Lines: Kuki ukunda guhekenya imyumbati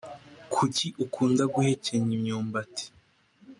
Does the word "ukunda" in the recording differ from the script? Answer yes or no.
no